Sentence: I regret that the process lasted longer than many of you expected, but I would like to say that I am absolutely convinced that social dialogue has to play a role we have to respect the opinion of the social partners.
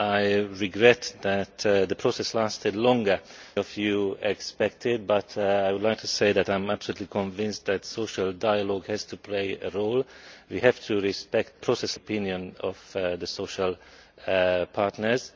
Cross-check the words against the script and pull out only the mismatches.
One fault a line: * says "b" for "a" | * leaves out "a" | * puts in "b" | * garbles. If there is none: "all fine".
* leaves out "than many"
* says "process" for "the"